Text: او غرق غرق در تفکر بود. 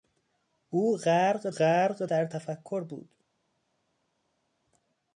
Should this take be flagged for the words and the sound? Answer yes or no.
no